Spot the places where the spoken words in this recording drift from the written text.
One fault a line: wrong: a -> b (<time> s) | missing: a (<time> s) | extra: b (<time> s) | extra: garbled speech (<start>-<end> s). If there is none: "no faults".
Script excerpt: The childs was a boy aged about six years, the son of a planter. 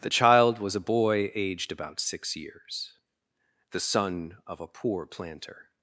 wrong: childs -> child (0.1 s)
extra: poor (4.7 s)